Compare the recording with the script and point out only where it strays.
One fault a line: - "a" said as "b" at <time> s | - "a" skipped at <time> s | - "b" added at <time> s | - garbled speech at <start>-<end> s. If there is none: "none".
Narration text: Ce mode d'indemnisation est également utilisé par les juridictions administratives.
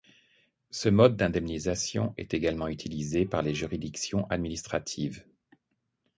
none